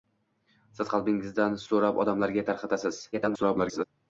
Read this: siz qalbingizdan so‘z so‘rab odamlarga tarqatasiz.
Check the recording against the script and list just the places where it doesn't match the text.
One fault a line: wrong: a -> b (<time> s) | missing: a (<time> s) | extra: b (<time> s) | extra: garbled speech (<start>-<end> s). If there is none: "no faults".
missing: so‘z (1.6 s)
extra: garbled speech (3.1-3.9 s)